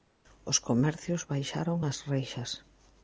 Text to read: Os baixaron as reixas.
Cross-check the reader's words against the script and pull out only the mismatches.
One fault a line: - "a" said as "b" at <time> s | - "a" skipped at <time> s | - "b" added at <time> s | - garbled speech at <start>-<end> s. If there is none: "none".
- "comercios" added at 0.7 s